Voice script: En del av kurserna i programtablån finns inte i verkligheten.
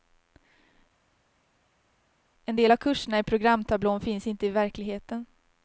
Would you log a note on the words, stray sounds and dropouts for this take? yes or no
no